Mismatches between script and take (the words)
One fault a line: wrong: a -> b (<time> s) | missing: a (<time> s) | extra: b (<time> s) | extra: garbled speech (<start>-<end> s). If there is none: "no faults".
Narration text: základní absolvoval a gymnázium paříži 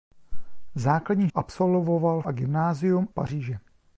no faults